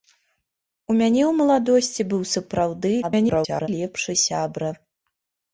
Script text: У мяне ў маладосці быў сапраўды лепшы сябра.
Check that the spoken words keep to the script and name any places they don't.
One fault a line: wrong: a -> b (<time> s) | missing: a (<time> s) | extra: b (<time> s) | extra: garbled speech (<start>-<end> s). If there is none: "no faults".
extra: garbled speech (3.0-3.7 s)